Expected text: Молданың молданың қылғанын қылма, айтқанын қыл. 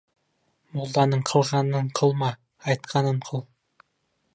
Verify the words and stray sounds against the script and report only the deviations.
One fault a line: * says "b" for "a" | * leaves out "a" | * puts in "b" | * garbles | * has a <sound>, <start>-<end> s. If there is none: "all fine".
* leaves out "молданың"